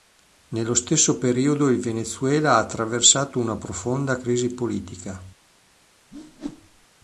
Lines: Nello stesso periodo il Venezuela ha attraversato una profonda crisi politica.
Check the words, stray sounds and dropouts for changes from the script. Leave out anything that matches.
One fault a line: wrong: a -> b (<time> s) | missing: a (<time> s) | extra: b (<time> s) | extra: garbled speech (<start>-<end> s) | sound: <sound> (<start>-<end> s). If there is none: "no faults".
sound: whoosh (6.1-6.9 s)